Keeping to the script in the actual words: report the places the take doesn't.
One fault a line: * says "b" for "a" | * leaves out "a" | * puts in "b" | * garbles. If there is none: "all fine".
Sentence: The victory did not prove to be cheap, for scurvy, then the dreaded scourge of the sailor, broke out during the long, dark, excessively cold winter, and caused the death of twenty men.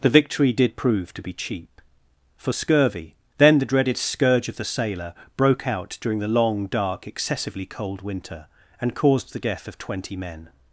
* leaves out "not"